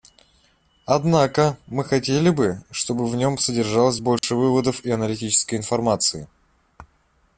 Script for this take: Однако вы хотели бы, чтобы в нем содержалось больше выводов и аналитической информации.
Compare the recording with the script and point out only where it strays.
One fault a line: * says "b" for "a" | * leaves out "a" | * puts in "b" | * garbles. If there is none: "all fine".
* says "мы" for "вы"